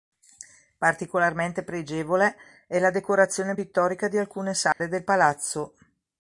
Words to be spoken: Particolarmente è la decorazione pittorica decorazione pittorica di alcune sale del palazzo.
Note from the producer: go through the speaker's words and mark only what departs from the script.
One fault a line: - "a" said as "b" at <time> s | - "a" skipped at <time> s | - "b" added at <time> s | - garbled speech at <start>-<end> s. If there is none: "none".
- "pregevole" added at 1.6 s
- "decorazione pittorica" skipped at 4.1 s